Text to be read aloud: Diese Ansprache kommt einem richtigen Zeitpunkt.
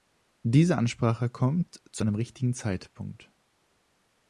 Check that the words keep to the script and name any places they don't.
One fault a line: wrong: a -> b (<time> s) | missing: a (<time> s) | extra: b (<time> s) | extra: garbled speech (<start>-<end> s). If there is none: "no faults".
extra: zu (1.9 s)